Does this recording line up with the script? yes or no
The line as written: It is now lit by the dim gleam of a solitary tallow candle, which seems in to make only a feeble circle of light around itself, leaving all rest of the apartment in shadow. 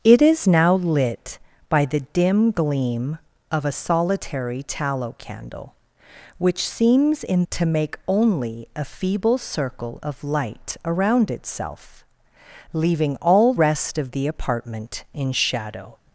yes